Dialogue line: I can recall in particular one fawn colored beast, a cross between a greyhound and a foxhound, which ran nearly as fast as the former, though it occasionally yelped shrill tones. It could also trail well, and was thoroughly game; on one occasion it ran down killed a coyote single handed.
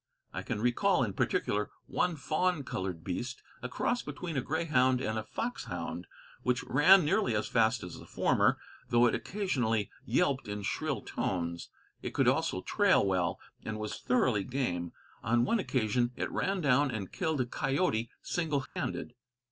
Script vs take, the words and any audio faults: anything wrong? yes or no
yes